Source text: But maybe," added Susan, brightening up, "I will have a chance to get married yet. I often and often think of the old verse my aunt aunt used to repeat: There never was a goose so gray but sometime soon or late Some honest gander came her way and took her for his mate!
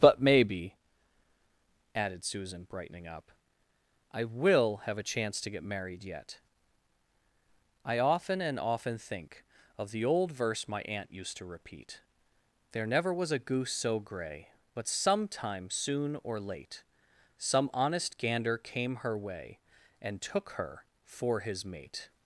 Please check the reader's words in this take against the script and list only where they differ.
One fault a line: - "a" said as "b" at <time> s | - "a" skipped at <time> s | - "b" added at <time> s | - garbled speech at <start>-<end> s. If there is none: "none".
- "aunt" skipped at 11.1 s